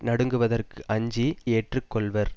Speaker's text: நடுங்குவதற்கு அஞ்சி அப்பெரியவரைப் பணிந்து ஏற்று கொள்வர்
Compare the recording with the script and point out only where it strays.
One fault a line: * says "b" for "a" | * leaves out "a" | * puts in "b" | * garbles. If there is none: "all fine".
* leaves out "அப்பெரியவரைப் பணிந்து"